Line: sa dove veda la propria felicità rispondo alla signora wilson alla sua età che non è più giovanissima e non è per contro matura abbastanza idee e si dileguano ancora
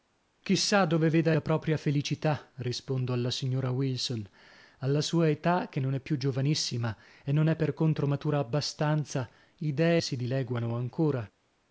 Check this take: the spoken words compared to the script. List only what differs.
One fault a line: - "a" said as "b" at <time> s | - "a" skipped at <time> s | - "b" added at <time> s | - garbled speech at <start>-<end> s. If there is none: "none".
none